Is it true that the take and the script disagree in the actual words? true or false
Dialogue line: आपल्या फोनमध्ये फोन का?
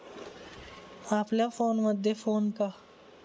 false